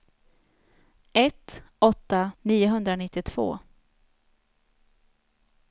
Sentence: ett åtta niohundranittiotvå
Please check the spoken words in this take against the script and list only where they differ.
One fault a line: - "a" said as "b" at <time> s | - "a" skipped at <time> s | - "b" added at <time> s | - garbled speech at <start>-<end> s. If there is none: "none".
none